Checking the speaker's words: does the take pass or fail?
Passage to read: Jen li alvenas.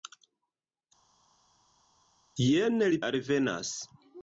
pass